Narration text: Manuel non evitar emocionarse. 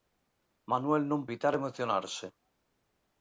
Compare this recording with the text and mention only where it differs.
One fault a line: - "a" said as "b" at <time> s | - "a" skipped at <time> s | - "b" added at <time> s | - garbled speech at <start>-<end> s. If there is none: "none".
none